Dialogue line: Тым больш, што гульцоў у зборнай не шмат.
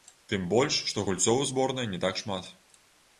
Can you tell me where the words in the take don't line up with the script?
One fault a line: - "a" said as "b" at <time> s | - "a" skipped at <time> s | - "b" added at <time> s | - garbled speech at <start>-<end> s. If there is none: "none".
- "так" added at 2.0 s